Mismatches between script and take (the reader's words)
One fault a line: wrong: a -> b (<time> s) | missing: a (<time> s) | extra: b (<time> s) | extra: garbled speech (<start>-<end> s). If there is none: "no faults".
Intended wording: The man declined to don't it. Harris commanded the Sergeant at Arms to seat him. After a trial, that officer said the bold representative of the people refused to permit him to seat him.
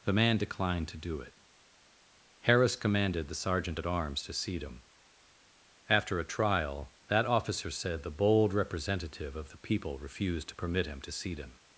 wrong: don't -> do (1.0 s)